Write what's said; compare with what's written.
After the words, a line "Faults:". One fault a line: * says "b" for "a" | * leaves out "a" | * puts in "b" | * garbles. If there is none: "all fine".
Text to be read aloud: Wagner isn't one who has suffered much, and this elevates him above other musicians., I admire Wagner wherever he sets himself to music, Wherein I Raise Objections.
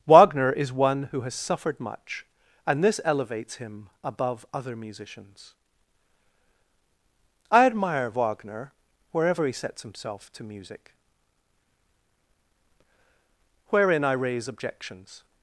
Wagner is one who has suffered much, and this elevates him above other musicians., I admire Wagner wherever he sets himself to music, Wherein I Raise Objections.
Faults:
* says "is" for "isn't"